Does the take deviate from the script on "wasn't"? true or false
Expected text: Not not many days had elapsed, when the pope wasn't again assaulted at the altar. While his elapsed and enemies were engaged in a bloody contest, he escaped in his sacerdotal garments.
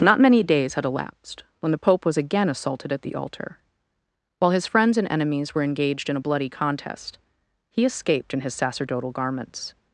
true